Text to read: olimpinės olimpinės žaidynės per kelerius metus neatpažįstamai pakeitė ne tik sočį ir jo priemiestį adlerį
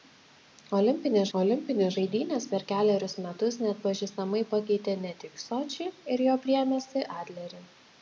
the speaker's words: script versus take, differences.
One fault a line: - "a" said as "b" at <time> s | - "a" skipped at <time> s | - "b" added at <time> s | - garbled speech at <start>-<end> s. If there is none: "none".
none